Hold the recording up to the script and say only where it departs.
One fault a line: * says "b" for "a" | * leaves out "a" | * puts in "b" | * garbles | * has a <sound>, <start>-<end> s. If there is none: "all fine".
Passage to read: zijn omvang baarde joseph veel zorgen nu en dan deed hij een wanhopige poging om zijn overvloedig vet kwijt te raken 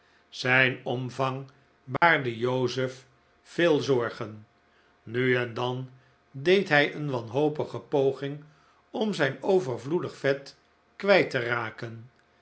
* has a dropout, 2.0-2.0 s